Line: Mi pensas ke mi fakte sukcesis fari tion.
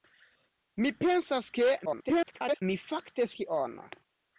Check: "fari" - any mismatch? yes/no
yes